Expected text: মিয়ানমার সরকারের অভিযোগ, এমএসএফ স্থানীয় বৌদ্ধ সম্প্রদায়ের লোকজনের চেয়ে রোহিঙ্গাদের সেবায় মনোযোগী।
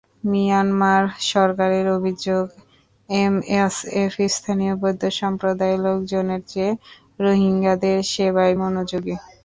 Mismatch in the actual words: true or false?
false